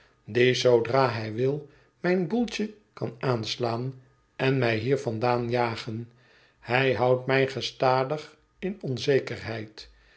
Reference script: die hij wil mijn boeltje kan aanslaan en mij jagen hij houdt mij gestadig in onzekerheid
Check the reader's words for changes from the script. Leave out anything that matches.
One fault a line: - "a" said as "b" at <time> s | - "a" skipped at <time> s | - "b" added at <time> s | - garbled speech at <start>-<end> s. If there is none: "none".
- "zoodra" added at 0.5 s
- "hier vandaan" added at 4.8 s